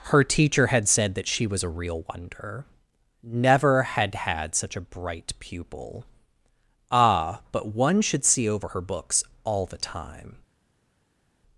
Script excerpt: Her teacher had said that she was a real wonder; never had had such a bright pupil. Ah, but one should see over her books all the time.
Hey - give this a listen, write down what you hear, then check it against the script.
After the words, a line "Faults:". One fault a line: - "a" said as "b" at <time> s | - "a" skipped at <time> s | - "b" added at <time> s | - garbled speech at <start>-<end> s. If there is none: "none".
Her teacher had said that she was a real wonder; never had had such a bright pupil. Ah, but one should see over her books all the time.
Faults:
none